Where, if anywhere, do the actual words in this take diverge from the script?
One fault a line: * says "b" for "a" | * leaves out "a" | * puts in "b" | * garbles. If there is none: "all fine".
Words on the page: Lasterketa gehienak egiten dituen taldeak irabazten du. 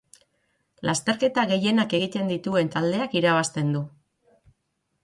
all fine